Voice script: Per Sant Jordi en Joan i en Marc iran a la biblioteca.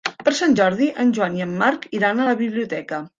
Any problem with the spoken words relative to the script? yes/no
no